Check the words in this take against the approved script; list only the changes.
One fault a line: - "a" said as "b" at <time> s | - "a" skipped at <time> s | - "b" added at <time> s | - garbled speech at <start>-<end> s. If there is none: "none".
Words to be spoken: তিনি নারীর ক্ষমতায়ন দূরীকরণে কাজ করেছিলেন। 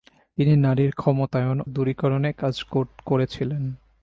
none